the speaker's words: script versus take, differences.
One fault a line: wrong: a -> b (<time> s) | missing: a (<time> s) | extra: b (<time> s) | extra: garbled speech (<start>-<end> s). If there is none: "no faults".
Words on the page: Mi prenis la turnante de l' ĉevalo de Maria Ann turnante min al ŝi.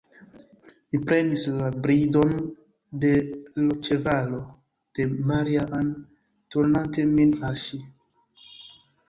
wrong: turnante -> bridon (1.8 s)